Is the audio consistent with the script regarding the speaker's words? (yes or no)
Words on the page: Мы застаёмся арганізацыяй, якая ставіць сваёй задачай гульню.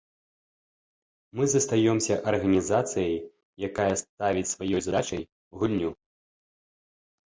yes